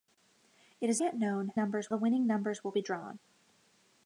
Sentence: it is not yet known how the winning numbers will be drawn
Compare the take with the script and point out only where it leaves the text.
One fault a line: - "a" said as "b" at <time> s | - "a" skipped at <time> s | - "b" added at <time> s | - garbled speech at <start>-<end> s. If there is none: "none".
- "not" skipped at 1.0 s
- "how" said as "numbers" at 1.5 s